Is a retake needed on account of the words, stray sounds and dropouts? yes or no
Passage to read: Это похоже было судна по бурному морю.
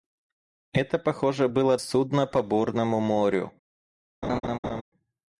yes